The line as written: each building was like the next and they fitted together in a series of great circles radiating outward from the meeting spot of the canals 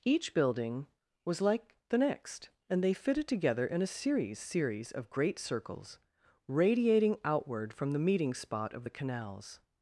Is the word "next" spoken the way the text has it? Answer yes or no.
yes